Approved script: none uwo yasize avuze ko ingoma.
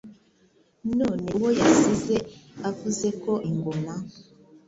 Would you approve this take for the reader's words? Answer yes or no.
yes